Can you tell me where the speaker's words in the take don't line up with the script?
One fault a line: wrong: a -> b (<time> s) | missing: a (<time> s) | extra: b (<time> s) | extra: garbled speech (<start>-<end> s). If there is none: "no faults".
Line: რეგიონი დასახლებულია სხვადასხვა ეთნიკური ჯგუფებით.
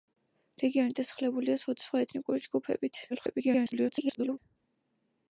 extra: garbled speech (3.1-4.4 s)